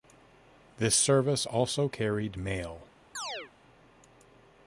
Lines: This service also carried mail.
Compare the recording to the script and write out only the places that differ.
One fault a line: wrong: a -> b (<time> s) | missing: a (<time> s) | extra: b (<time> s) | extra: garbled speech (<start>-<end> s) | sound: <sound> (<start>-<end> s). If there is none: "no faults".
sound: chirp (3.1-3.5 s)